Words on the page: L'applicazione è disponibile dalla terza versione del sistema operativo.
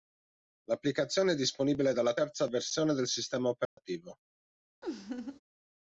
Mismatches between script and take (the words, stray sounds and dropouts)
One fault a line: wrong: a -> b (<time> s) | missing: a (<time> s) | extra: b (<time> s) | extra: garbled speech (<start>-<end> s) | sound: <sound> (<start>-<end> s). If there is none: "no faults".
sound: dropout (3.7-3.8 s)
sound: laugh (4.8-5.4 s)